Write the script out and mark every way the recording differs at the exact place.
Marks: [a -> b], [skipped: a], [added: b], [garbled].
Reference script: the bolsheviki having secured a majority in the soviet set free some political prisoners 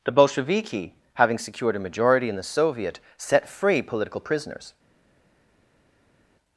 the bolsheviki having secured a majority in the soviet set free [skipped: some] political prisoners